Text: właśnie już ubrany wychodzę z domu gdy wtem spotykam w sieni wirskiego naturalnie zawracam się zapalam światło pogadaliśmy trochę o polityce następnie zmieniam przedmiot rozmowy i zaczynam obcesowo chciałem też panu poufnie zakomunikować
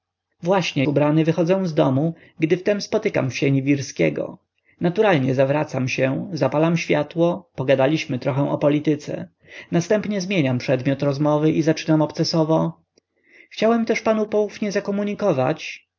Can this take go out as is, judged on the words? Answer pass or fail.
fail